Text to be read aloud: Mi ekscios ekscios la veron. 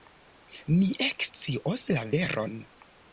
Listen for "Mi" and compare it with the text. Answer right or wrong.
right